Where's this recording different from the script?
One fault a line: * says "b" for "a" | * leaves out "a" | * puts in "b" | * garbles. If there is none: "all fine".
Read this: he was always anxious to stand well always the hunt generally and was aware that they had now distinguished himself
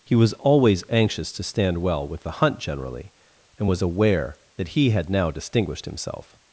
* says "with" for "always"
* says "he" for "they"